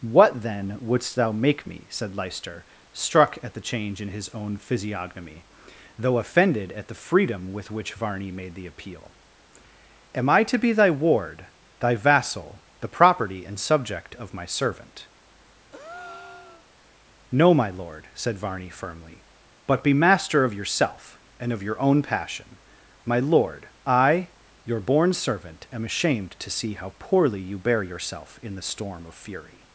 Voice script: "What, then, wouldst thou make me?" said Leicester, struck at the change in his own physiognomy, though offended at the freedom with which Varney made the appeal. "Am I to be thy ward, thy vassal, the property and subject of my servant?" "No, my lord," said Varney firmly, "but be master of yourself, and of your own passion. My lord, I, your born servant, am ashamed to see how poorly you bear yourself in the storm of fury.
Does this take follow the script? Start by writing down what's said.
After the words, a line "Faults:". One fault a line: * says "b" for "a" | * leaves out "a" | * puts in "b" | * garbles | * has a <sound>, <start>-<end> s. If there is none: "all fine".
"What, then, wouldst thou make me?" said Leicester, struck at the change in his own physiognomy, though offended at the freedom with which Varney made the appeal. "Am I to be thy ward, thy vassal, the property and subject of my servant?" "No, my lord," said Varney firmly, "but be master of yourself, and of your own passion. My lord, I, your born servant, am ashamed to see how poorly you bear yourself in the storm of fury.
Faults:
* has a breath, 15.7-16.7 s